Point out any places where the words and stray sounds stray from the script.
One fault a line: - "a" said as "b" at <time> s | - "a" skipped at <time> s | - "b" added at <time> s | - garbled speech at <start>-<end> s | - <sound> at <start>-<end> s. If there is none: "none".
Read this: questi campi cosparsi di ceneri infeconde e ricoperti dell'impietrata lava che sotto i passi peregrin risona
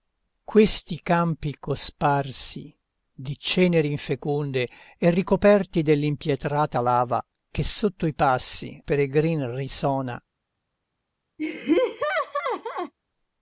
- laugh at 11.4-12.9 s